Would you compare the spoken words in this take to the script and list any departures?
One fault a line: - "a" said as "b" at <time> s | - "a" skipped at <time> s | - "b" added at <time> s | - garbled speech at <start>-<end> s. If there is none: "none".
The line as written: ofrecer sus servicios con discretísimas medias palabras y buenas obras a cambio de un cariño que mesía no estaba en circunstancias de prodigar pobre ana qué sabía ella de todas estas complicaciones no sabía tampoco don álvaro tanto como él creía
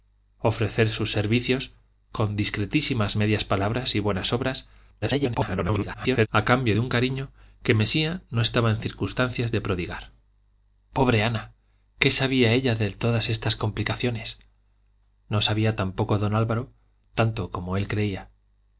- garbled speech at 5.0-6.3 s